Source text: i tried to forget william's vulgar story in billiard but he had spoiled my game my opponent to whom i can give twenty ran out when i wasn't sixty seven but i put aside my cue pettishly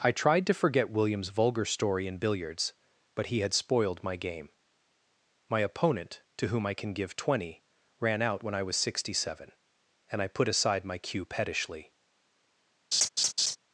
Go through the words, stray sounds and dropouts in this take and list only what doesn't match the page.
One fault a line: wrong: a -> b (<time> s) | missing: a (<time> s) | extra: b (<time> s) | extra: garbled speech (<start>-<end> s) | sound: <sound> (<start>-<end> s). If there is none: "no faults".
wrong: billiard -> billiards (2.2 s)
wrong: wasn't -> was (8.6 s)
wrong: but -> and (10.1 s)
sound: laugh (12.9-13.6 s)